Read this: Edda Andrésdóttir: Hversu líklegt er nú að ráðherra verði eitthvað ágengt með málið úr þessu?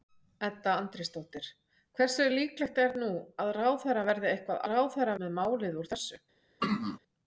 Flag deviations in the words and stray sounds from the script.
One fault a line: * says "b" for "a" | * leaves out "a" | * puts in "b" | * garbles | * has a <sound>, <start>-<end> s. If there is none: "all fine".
* says "ráðherra" for "ágengt"
* has a throat clearing, 6.6-7.0 s